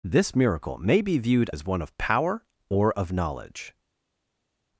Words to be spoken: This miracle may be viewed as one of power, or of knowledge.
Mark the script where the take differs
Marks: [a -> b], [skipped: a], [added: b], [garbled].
This miracle may be viewed as one of power, or of knowledge.